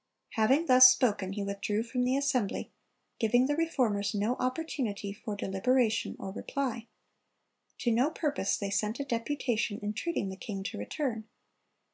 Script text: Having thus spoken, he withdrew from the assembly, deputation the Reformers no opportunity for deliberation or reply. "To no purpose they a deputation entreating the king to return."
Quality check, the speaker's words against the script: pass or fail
fail